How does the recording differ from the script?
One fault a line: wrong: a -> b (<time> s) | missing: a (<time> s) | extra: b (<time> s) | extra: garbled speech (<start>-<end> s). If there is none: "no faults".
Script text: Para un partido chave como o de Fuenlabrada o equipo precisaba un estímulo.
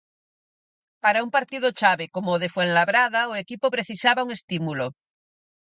no faults